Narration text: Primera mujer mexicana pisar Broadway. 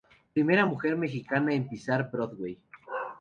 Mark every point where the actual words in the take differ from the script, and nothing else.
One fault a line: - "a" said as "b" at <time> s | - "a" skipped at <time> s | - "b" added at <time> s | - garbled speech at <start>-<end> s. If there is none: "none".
- "en" added at 1.5 s